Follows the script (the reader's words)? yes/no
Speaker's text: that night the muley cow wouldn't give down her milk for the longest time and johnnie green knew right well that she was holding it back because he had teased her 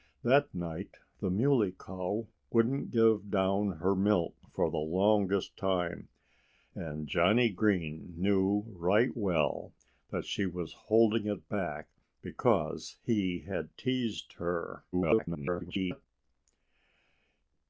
no